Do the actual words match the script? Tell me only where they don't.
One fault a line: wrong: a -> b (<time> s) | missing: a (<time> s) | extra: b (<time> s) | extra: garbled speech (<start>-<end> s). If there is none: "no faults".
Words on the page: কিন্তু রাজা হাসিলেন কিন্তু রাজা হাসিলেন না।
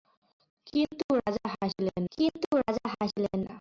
no faults